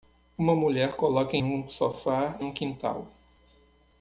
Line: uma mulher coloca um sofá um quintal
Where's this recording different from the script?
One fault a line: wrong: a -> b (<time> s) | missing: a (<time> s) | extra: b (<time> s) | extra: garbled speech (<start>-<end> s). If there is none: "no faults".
no faults